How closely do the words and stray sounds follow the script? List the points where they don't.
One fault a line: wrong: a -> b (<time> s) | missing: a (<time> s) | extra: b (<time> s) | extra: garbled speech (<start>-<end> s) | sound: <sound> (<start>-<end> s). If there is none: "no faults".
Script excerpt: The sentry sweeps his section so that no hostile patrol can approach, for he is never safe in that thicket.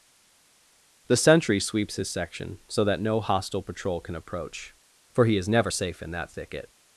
no faults